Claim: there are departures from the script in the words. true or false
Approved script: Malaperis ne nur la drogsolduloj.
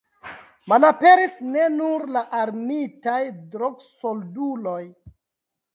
true